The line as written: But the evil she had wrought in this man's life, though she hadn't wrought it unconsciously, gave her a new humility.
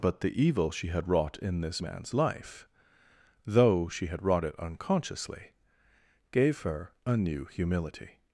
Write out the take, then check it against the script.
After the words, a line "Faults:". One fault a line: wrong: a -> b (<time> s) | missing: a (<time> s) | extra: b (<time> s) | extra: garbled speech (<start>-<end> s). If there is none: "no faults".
But the evil she had wrought in this man's life, though she had wrought it unconsciously, gave her a new humility.
Faults:
wrong: hadn't -> had (4.1 s)